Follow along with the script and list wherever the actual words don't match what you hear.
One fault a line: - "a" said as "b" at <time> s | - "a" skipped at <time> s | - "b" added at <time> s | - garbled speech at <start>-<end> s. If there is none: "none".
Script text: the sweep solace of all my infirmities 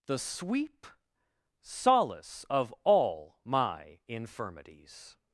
none